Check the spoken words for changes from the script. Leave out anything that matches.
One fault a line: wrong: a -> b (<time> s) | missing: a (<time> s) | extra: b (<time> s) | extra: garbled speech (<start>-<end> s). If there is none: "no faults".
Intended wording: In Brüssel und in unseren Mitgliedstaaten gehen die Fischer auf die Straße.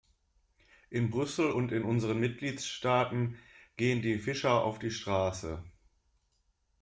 no faults